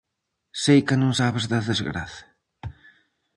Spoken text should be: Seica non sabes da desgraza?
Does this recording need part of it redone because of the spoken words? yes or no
no